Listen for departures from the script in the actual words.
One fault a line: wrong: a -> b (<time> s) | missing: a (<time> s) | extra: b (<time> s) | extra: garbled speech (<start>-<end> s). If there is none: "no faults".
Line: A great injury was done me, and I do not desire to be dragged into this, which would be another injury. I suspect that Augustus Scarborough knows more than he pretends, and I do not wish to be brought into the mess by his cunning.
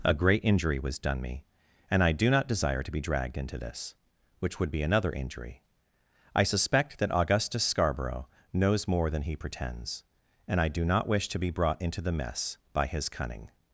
no faults